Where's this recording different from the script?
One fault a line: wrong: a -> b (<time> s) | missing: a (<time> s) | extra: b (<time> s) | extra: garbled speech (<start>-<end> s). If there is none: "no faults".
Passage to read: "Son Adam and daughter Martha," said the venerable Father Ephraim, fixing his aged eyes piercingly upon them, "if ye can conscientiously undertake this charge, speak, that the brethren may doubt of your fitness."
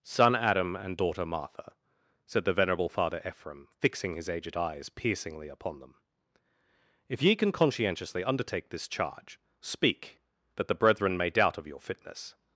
no faults